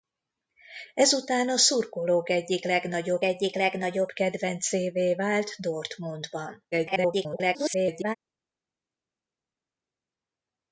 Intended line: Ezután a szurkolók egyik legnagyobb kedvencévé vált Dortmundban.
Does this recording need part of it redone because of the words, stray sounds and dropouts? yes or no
yes